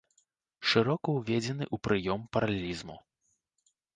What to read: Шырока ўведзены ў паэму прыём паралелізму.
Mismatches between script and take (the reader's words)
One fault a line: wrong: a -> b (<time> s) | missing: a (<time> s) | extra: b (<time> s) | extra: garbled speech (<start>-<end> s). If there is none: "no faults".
missing: паэму (1.8 s)